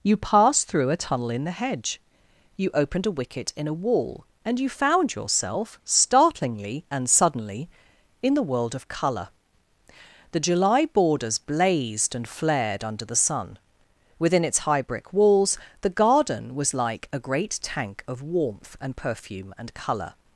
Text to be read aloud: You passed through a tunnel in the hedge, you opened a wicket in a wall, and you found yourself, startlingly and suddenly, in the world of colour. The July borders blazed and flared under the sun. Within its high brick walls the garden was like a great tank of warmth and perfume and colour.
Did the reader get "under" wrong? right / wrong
right